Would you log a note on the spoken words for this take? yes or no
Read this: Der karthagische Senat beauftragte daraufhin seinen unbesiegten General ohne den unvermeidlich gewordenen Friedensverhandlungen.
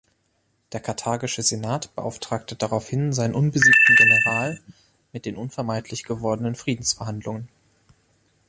yes